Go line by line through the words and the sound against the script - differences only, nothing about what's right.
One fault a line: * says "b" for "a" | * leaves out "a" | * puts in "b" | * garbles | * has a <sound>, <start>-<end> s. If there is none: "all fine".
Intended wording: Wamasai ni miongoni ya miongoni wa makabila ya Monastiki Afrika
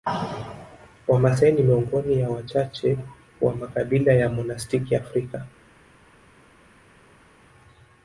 * says "wachache" for "miongoni"